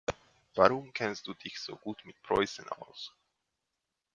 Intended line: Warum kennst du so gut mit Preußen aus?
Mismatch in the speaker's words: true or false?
true